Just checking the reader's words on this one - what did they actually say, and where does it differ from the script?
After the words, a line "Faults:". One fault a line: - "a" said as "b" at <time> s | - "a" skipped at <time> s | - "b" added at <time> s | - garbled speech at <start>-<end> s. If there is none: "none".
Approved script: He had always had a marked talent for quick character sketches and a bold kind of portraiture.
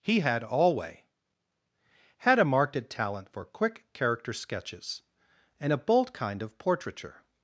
He had alway had a marked talent for quick character sketches and a bold kind of portraiture.
Faults:
- "always" said as "alway" at 0.4 s